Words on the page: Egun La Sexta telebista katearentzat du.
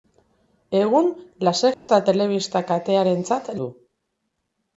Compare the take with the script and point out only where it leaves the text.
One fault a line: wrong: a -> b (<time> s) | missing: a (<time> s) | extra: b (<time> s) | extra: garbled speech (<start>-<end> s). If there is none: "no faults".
no faults